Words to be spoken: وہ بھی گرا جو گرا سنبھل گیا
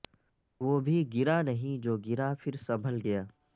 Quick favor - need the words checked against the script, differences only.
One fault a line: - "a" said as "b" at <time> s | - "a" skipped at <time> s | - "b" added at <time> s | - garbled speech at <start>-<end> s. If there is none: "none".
- "نہیں" added at 1.4 s
- "پھر" added at 2.4 s